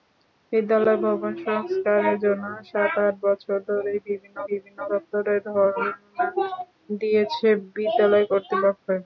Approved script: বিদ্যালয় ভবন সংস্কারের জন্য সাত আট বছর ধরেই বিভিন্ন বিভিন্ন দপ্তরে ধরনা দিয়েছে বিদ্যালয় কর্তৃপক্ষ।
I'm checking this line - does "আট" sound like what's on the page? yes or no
yes